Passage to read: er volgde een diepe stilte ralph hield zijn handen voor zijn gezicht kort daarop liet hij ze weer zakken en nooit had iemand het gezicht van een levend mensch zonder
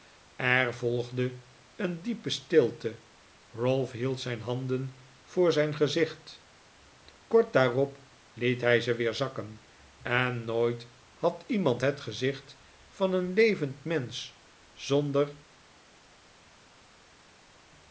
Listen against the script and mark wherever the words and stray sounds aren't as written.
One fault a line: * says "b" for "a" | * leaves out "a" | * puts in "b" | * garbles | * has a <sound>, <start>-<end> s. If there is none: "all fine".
all fine